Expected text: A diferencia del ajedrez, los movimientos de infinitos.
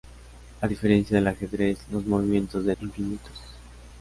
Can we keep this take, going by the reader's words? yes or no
yes